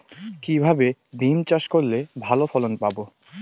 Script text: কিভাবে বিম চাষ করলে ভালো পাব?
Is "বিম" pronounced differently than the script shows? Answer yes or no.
no